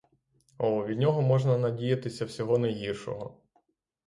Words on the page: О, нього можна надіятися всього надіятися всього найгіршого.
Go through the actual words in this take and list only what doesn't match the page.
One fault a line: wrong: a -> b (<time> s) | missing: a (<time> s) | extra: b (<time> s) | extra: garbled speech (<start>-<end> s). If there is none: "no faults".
extra: від (0.8 s)
missing: надіятися всього (2.6 s)